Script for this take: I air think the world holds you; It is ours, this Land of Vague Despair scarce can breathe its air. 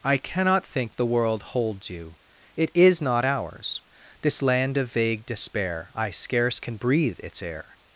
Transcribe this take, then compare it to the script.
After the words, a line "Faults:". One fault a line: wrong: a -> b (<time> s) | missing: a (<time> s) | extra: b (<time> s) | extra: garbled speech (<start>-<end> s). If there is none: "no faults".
I cannot think the world holds you; It is not ours, this Land of Vague Despair I scarce can breathe its air.
Faults:
wrong: air -> cannot (0.2 s)
extra: not (3.0 s)
extra: I (6.0 s)